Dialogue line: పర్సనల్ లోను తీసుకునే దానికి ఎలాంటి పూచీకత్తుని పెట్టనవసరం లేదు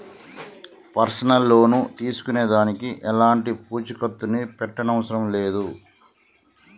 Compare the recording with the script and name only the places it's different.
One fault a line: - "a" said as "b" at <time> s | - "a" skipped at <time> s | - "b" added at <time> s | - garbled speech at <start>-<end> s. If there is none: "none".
none